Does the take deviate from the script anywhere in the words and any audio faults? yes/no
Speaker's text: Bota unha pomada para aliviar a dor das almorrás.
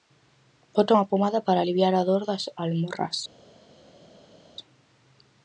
no